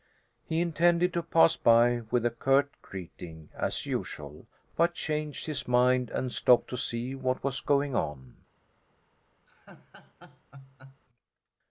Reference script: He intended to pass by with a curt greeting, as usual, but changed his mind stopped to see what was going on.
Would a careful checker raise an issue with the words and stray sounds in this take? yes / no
yes